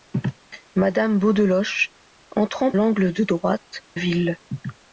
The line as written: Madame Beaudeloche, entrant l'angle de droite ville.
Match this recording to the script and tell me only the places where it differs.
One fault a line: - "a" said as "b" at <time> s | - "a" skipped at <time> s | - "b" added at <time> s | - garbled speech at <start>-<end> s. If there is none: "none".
none